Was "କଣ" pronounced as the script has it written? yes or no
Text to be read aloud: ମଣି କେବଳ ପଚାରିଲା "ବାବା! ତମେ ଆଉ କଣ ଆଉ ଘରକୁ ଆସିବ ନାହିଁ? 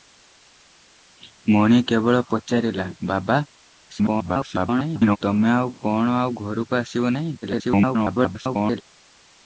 yes